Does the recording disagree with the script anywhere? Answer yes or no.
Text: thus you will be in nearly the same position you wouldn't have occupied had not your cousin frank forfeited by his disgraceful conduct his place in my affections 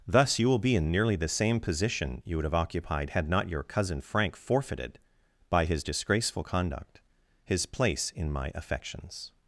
yes